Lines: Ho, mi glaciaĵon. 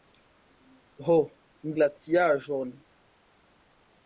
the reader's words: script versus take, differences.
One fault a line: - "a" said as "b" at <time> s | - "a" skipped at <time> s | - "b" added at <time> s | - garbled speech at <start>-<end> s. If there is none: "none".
none